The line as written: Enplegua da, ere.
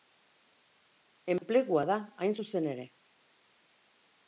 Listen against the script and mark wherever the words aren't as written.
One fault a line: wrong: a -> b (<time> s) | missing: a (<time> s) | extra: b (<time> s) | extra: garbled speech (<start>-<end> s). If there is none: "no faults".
extra: hain zuzen (2.2 s)